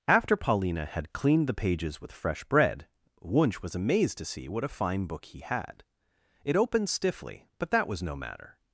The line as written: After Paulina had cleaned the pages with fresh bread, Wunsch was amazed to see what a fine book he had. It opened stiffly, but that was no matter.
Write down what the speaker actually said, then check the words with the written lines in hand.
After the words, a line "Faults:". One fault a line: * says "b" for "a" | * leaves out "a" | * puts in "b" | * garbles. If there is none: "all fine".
After Paulina had cleaned the pages with fresh bread, Wunsch was amazed to see what a fine book he had. It opened stiffly, but that was no matter.
Faults:
all fine